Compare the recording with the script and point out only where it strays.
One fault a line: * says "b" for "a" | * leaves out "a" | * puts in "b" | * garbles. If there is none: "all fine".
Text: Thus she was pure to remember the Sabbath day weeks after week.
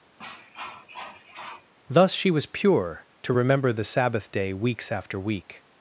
all fine